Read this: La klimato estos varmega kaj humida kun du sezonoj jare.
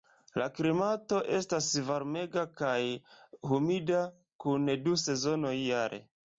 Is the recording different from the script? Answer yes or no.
yes